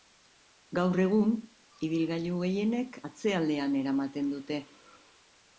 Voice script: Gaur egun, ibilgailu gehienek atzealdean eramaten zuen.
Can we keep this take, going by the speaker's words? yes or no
no